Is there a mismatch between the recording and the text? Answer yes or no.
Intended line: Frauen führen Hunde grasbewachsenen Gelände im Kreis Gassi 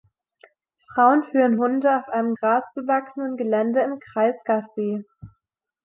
yes